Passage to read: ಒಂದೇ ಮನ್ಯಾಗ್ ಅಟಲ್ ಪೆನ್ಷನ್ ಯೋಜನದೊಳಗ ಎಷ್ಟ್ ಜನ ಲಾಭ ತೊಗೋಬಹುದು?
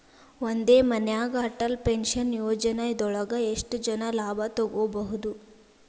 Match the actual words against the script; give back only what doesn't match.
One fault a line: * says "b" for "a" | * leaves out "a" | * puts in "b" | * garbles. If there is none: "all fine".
all fine